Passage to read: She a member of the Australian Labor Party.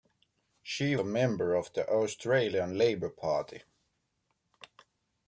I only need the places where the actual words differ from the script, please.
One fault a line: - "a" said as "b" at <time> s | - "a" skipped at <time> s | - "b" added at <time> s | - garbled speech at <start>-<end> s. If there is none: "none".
none